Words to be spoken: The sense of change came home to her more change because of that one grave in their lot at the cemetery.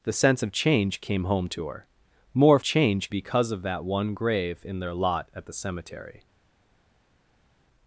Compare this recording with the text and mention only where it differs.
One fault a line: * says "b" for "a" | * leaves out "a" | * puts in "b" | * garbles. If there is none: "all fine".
all fine